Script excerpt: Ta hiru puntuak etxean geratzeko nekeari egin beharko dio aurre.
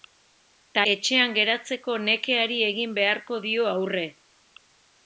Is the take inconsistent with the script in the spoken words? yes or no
yes